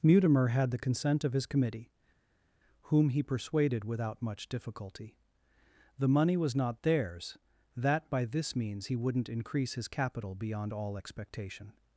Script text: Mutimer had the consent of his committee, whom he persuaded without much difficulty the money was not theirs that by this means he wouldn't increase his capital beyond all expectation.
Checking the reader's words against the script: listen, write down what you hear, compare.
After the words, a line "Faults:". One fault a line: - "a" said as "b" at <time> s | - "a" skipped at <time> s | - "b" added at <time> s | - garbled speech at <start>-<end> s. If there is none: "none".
Mutimer had the consent of his committee, whom he persuaded without much difficulty the money was not theirs that by this means he wouldn't increase his capital beyond all expectation.
Faults:
none